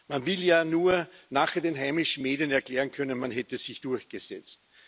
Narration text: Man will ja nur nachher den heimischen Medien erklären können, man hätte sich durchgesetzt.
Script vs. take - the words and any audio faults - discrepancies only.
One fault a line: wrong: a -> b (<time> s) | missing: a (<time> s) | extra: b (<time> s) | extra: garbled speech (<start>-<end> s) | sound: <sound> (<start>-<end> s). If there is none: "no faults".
no faults